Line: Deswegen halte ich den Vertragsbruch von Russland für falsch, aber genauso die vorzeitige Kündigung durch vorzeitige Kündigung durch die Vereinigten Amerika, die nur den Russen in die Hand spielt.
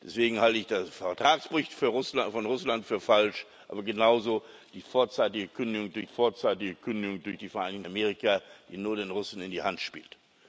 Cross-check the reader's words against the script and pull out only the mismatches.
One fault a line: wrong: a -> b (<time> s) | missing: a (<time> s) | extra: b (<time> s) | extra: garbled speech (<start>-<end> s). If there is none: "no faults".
no faults